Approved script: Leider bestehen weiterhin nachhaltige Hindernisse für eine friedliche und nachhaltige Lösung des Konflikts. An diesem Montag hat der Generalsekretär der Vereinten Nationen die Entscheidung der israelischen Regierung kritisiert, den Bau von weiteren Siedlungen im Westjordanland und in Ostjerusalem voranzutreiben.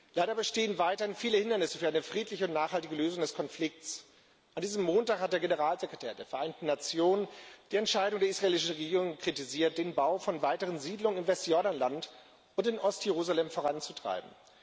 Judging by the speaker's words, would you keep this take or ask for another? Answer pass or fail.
fail